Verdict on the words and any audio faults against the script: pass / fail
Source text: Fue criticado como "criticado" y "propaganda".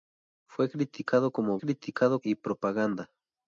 pass